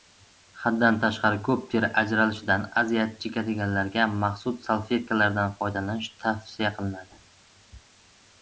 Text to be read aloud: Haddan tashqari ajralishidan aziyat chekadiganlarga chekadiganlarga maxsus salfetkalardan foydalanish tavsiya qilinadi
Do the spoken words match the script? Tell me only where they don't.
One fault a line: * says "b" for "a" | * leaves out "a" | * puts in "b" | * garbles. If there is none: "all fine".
* puts in "ko‘p teri"
* leaves out "chekadiganlarga"